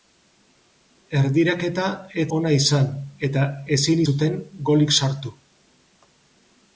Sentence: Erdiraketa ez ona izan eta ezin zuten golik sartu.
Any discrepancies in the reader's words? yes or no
no